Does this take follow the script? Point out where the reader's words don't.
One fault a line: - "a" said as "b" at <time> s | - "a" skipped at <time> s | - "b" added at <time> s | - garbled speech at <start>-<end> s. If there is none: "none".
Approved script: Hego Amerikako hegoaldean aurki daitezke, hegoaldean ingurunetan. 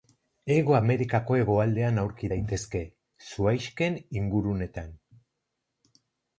- "hegoaldean" said as "zuhaixken" at 3.3 s